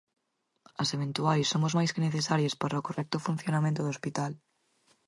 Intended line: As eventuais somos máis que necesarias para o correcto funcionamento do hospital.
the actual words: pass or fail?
pass